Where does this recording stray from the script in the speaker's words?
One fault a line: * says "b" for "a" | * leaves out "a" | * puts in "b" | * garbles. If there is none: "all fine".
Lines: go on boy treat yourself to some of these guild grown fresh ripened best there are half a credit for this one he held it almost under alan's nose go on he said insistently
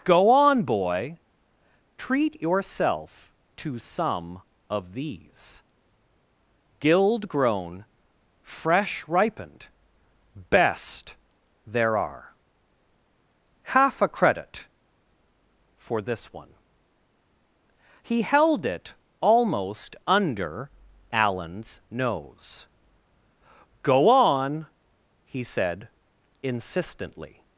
all fine